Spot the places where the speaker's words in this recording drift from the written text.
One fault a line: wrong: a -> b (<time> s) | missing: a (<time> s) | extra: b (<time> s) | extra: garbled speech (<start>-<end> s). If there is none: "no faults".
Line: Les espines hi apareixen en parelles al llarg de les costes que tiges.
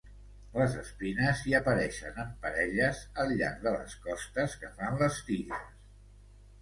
extra: fan les (4.8 s)